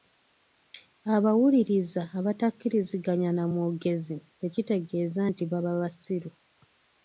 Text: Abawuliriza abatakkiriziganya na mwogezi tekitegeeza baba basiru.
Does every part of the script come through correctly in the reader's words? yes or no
no